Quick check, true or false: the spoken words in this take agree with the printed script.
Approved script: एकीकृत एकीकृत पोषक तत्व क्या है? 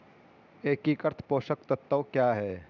false